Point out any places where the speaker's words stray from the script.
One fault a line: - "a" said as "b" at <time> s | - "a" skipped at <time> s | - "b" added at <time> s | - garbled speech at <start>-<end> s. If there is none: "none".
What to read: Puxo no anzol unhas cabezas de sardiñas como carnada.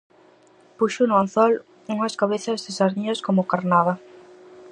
none